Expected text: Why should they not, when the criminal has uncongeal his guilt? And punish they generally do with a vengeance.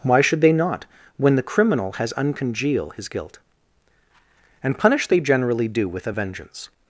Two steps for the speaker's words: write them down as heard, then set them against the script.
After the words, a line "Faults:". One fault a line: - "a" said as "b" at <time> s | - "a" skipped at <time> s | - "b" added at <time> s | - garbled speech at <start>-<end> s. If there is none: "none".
Why should they not, when the criminal has uncongeal his guilt? And punish they generally do with a vengeance.
Faults:
none